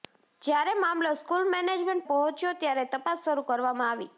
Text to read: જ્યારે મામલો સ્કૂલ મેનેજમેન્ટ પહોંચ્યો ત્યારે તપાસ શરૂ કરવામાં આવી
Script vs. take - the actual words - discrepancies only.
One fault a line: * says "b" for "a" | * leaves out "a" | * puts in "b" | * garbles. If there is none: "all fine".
all fine